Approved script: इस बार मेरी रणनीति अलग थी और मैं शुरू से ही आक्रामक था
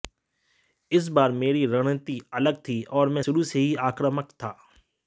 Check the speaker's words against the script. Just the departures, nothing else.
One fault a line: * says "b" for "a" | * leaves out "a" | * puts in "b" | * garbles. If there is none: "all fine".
all fine